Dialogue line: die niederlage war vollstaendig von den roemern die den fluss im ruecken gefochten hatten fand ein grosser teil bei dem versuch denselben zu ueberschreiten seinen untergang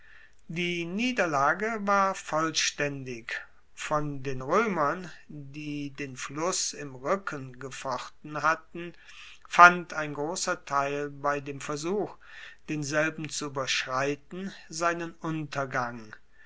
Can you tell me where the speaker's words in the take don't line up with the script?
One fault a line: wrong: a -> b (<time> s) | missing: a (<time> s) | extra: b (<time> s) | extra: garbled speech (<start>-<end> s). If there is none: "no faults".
no faults